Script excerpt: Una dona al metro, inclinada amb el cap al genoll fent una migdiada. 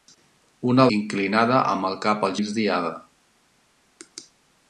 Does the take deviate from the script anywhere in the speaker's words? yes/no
yes